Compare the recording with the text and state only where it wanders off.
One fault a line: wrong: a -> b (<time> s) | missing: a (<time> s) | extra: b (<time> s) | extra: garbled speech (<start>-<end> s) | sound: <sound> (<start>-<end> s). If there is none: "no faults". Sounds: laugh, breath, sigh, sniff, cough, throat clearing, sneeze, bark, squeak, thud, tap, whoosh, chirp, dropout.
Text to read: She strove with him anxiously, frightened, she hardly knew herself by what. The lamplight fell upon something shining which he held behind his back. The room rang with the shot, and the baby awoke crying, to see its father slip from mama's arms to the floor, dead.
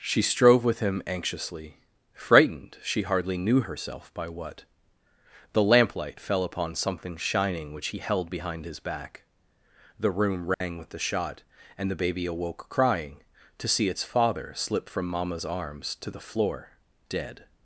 sound: dropout (10.5-10.6 s)